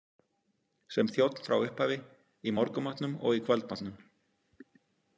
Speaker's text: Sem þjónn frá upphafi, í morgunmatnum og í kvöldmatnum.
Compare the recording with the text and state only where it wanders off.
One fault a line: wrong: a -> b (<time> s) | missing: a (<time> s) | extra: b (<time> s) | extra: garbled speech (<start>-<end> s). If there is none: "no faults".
no faults